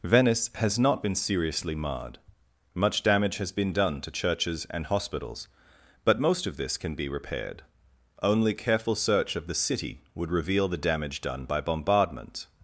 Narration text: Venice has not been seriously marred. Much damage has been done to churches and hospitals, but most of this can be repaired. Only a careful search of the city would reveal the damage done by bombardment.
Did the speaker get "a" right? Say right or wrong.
wrong